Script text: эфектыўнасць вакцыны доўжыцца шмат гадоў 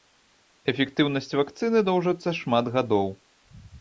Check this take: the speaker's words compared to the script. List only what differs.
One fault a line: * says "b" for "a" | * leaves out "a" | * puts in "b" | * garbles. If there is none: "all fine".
all fine